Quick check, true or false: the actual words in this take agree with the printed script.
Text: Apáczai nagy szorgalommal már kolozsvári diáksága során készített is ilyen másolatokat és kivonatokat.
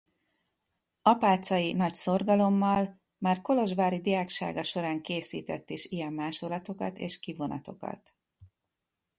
true